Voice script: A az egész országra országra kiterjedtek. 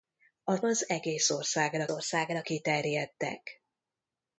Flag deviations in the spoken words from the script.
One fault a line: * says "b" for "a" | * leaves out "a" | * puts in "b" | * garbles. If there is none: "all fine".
all fine